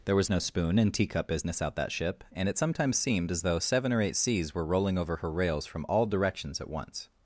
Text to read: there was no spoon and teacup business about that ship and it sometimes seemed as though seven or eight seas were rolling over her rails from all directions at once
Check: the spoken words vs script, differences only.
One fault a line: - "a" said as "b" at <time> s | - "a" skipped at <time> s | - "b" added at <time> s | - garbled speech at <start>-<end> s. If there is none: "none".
- "about" said as "out" at 1.6 s